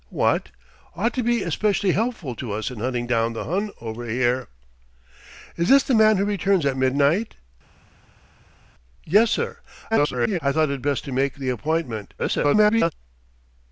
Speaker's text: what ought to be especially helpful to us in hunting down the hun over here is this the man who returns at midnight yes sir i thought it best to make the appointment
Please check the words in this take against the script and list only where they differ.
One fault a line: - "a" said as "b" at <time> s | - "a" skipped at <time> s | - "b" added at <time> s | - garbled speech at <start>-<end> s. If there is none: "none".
- garbled speech at 9.9-10.4 s
- garbled speech at 12.2-12.9 s